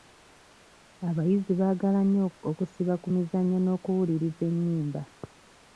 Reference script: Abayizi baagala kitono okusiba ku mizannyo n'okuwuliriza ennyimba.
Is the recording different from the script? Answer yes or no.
yes